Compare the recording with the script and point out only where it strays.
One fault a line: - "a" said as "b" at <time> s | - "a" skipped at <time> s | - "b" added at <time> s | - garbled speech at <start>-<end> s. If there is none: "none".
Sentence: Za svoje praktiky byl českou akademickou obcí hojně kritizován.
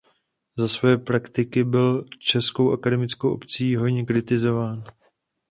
none